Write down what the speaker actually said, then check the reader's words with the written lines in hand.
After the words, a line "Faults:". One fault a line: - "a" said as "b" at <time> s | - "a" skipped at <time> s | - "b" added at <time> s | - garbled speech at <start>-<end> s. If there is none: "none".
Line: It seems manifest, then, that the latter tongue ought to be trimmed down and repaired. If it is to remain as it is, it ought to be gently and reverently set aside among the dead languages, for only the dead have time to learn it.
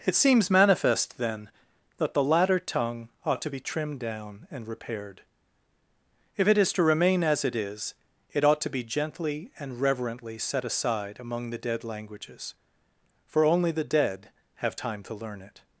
It seems manifest, then, that the latter tongue ought to be trimmed down and repaired. If it is to remain as it is, it ought to be gently and reverently set aside among the dead languages, for only the dead have time to learn it.
Faults:
none